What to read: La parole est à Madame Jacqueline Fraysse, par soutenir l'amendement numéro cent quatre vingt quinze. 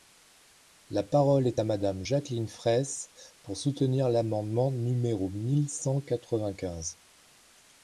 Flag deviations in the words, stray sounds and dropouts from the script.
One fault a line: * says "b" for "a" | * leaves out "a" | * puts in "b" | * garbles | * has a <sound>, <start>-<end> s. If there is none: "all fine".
* says "pour" for "par"
* puts in "mille"